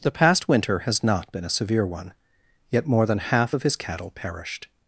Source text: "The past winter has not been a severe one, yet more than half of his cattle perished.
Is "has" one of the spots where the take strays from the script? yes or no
no